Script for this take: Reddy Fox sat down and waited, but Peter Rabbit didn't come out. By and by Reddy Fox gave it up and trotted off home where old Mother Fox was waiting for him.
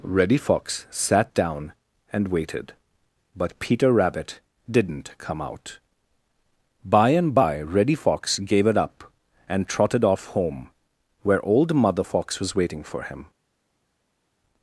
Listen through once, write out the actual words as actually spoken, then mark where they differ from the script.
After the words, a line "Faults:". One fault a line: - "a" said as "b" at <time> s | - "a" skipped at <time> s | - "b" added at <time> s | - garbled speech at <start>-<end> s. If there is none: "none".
Reddy Fox sat down and waited, but Peter Rabbit didn't come out. By and by Reddy Fox gave it up and trotted off home where old Mother Fox was waiting for him.
Faults:
none